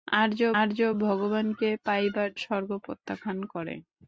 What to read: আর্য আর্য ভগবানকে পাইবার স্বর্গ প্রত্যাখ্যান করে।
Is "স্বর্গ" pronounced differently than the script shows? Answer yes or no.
no